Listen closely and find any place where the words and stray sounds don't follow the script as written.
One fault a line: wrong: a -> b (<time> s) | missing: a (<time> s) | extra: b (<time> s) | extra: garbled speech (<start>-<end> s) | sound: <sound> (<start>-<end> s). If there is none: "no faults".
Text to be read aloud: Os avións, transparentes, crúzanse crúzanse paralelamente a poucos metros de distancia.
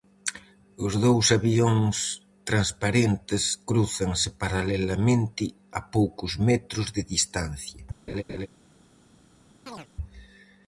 extra: dous (1.1 s)
missing: crúzanse (4.3 s)
sound: laugh (8.1-8.5 s)
sound: chirp (9.7-9.9 s)